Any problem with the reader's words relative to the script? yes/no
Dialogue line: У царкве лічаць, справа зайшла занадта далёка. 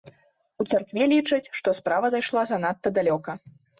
yes